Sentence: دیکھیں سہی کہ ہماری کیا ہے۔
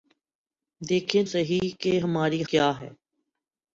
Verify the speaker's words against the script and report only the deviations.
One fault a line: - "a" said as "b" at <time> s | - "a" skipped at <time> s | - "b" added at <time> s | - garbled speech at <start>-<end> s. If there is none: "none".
none